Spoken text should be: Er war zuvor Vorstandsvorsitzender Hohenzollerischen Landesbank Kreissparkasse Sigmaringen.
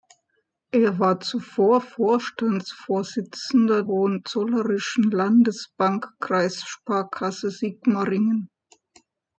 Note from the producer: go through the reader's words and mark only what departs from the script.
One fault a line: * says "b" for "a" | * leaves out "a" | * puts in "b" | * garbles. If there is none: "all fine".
all fine